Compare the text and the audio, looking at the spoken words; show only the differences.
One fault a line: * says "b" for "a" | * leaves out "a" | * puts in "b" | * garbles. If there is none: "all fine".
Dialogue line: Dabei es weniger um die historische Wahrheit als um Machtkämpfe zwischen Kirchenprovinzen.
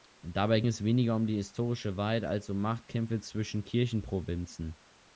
all fine